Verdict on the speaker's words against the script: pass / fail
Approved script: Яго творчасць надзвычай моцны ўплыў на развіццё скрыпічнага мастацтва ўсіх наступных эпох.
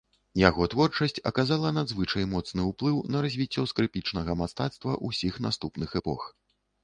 fail